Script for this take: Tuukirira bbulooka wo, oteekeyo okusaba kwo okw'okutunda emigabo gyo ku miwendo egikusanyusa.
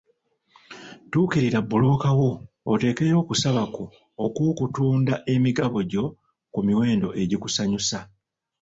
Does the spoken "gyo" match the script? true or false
true